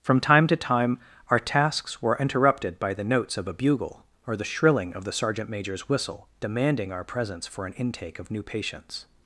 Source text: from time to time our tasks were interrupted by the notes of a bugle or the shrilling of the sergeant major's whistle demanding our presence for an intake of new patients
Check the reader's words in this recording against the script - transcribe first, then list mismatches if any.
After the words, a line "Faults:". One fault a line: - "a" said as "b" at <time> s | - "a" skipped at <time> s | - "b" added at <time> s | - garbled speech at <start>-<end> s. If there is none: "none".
from time to time our tasks were interrupted by the notes of a bugle or the shrilling of the sergeant major's whistle demanding our presence for an intake of new patients
Faults:
none